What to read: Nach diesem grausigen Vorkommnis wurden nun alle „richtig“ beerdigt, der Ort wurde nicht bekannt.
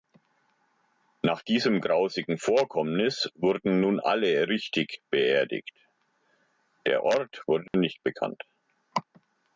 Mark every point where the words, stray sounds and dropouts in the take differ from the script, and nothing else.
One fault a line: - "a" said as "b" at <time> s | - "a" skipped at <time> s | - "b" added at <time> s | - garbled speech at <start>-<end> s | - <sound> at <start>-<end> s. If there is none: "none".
- dropout at 7.7-7.7 s